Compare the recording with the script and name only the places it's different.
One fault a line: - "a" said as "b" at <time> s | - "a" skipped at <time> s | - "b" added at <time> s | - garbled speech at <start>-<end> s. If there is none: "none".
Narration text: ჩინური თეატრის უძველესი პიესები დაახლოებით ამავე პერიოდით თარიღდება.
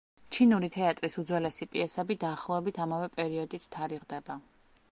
none